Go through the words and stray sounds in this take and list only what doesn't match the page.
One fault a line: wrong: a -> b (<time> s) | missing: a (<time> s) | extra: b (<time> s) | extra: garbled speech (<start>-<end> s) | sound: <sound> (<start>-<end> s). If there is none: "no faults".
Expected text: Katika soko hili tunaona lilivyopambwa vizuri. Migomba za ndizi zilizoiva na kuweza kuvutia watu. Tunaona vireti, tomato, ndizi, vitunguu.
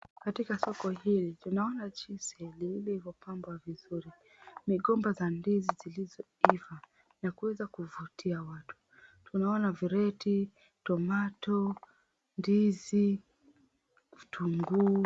extra: jinsi (1.9 s)